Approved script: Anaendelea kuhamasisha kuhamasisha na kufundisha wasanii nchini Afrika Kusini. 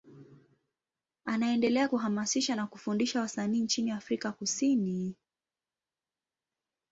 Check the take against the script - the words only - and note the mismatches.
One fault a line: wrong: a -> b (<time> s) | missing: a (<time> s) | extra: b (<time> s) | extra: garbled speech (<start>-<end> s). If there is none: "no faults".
missing: kuhamasisha (2.5 s)